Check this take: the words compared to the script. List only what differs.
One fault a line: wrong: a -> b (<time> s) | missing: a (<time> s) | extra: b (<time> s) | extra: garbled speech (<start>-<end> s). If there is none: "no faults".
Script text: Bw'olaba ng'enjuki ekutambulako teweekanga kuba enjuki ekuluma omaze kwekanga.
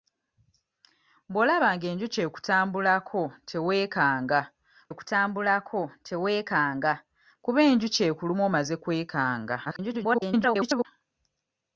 extra: ekutambulako teweekanga (4.9 s)
extra: garbled speech (9.7-10.9 s)